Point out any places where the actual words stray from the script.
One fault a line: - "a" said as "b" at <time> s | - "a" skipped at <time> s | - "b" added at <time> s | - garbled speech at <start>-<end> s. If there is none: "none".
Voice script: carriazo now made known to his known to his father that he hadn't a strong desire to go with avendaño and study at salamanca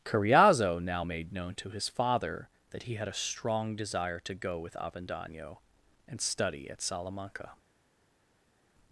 - "known to his" skipped at 1.9 s
- "hadn't" said as "had" at 2.9 s